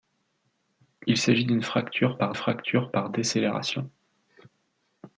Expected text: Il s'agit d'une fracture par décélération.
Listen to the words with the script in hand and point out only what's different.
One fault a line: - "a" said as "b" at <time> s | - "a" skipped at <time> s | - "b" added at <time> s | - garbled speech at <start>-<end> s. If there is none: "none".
- "fracture par" added at 2.3 s